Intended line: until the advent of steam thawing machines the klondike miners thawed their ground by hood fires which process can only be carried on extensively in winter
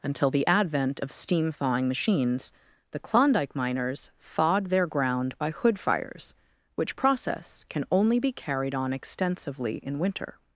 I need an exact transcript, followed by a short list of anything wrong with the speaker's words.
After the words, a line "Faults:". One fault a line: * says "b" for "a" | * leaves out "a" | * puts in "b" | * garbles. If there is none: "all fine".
until the advent of steam thawing machines the klondike miners thawed their ground by hood fires which process can only be carried on extensively in winter
Faults:
all fine